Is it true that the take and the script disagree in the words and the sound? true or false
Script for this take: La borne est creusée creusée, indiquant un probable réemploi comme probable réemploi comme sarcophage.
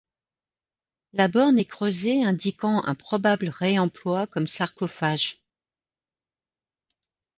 true